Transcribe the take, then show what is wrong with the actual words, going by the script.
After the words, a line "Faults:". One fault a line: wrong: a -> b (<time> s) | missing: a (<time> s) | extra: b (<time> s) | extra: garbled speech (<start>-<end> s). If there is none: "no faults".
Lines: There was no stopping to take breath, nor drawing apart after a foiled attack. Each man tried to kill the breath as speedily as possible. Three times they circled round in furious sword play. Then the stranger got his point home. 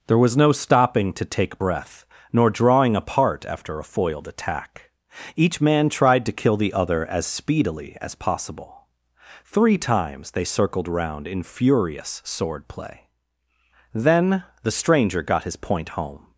There was no stopping to take breath, nor drawing apart after a foiled attack. Each man tried to kill the other as speedily as possible. Three times they circled round in furious sword play. Then the stranger got his point home.
Faults:
wrong: breath -> other (6.7 s)